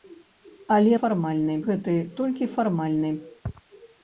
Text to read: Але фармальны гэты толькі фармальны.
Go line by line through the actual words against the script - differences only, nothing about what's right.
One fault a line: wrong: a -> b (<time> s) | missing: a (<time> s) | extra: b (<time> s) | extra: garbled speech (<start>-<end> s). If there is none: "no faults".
no faults